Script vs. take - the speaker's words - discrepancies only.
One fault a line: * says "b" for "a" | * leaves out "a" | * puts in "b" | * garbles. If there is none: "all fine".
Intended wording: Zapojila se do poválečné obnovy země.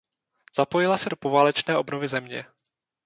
all fine